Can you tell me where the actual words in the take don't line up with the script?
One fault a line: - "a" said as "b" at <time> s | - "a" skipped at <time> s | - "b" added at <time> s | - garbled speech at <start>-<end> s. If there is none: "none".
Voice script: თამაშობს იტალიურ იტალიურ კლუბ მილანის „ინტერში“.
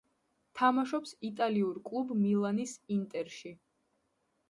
- "იტალიურ" skipped at 1.8 s